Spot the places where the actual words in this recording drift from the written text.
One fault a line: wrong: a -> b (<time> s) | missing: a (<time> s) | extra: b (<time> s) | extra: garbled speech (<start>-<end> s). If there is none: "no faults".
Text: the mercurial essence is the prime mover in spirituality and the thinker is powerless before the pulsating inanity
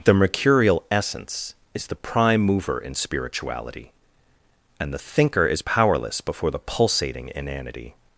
no faults